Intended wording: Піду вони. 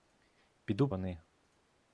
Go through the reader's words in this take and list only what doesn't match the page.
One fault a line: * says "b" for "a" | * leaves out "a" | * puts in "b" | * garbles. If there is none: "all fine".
all fine